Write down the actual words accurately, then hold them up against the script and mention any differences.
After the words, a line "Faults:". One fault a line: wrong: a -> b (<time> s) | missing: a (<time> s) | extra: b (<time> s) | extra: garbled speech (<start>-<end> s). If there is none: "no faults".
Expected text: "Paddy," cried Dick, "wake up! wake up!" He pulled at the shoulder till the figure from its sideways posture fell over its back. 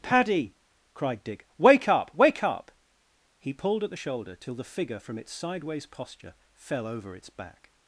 "Paddy," cried Dick, "wake up! wake up!" He pulled at the shoulder till the figure from its sideways posture fell over its back.
Faults:
no faults